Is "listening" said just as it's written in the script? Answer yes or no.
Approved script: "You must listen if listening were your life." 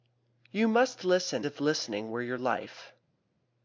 yes